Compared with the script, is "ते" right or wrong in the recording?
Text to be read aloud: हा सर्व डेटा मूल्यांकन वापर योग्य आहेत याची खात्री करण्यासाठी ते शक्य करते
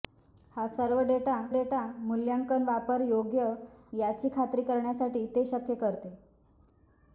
right